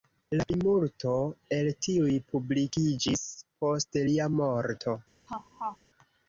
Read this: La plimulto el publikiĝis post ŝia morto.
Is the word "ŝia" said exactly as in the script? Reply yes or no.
no